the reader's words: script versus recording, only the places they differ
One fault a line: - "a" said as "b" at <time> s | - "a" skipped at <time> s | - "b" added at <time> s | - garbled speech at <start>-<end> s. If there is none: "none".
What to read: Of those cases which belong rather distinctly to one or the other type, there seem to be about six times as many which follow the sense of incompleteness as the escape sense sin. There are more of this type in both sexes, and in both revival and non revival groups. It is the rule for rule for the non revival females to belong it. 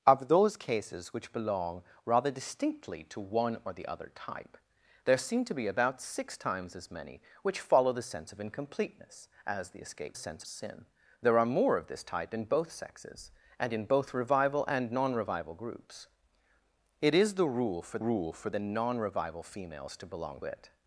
none